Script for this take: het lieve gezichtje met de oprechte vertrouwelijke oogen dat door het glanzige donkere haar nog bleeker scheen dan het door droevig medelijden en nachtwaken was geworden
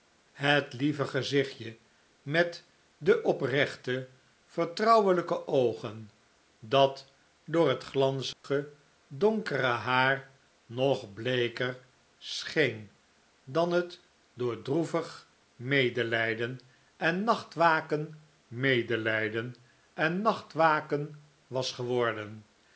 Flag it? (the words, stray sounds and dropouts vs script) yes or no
yes